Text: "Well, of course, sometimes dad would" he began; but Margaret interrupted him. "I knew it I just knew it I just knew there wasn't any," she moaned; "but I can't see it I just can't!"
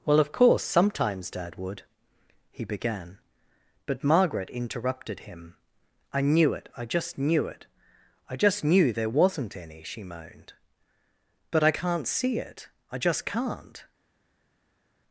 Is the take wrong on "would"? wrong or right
right